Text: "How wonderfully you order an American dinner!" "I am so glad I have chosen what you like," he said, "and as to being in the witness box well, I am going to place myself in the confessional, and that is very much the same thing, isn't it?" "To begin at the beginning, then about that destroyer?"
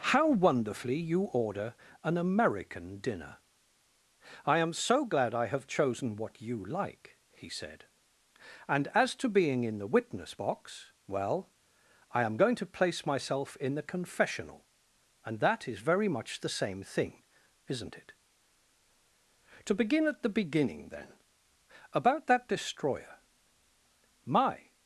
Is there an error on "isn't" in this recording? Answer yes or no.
no